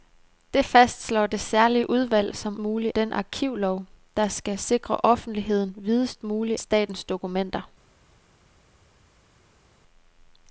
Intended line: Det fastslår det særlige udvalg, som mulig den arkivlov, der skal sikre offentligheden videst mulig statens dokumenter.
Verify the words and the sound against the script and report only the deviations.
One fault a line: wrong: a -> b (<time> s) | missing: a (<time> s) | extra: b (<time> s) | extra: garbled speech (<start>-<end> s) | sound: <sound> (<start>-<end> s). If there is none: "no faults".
no faults